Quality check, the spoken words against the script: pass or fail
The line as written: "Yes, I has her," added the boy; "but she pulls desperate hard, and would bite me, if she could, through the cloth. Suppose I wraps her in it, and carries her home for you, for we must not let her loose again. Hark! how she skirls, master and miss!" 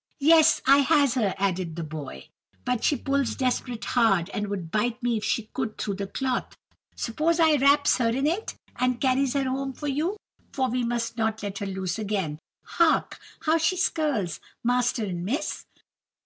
pass